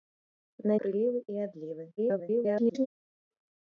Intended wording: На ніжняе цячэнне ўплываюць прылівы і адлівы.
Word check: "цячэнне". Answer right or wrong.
wrong